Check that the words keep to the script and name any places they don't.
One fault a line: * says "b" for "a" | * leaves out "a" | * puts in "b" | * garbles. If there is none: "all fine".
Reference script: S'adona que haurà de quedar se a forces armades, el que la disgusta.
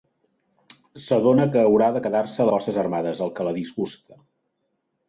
all fine